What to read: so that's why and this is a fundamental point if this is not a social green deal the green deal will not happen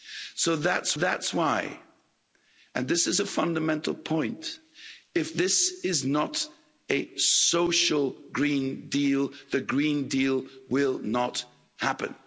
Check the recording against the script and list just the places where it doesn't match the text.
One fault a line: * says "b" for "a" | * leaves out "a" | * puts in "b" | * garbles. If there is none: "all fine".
* puts in "that's"